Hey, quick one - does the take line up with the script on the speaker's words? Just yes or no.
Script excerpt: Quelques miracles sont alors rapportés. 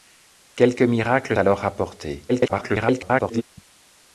no